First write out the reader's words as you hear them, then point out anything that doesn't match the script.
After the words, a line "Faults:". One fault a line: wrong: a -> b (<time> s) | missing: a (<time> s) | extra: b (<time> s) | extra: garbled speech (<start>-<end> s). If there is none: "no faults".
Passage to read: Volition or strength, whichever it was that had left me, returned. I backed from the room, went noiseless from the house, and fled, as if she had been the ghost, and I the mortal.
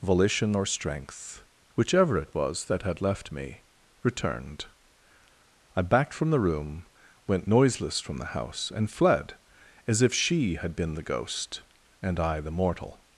Volition or strength, whichever it was that had left me, returned. I backed from the room, went noiseless from the house, and fled, as if she had been the ghost, and I the mortal.
Faults:
no faults